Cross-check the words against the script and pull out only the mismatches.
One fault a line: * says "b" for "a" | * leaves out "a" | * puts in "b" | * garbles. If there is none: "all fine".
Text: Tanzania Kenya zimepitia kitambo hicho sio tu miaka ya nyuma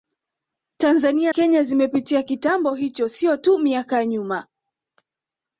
all fine